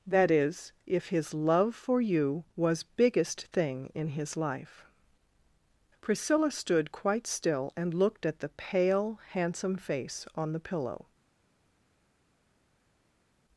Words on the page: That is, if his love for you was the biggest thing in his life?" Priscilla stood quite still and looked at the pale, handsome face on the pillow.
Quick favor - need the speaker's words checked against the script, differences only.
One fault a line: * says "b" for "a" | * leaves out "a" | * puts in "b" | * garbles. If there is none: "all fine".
* leaves out "the"